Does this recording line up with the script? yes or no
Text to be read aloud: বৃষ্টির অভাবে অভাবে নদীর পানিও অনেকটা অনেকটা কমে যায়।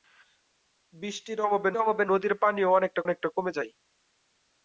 yes